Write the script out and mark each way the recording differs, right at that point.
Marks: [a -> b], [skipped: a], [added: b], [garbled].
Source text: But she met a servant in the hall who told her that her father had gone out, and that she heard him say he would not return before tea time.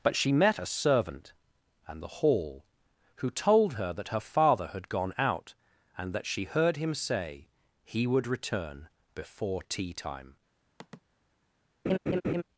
But she met a servant [in -> and] the hall who told her that her father had gone out, and that she heard him say he would [skipped: not] return before tea time.